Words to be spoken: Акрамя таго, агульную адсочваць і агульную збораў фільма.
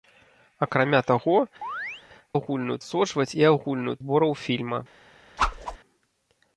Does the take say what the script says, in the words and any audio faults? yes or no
no